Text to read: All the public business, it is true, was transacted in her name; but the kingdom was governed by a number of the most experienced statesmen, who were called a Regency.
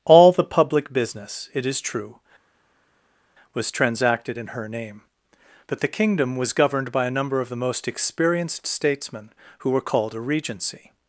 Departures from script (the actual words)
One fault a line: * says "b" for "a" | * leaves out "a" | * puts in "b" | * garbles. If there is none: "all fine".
all fine